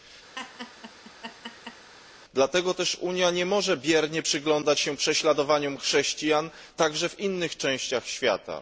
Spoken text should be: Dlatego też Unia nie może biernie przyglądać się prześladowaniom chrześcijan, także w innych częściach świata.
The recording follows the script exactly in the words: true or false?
true